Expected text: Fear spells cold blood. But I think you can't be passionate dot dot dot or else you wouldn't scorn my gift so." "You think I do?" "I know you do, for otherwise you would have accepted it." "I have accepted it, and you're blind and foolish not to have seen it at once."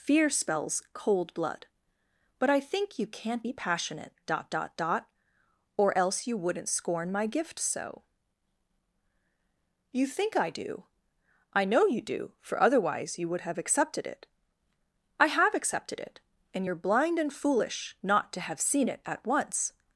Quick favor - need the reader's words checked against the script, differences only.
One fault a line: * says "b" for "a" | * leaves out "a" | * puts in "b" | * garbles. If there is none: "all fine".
all fine